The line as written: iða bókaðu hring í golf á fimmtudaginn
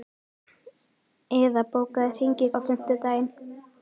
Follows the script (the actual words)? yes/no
no